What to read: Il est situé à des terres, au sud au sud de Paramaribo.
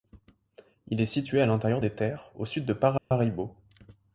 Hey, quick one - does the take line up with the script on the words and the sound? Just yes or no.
no